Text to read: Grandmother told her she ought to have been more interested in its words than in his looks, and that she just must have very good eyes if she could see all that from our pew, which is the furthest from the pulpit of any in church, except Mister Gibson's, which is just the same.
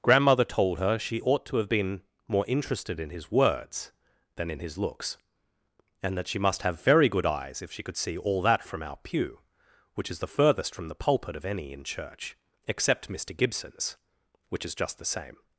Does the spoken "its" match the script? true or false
false